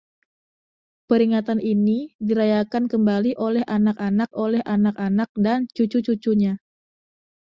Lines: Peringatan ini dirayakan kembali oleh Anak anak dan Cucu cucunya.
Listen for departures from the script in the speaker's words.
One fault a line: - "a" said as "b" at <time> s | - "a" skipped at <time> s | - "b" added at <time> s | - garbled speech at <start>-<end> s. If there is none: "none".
- "oleh Anak anak" added at 4.3 s